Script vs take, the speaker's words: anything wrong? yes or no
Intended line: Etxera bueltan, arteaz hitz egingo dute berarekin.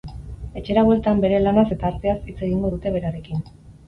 yes